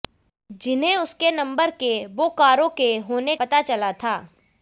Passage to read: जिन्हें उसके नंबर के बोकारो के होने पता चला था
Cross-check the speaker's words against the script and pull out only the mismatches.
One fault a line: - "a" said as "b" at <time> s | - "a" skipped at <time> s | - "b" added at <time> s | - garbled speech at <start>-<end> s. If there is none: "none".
none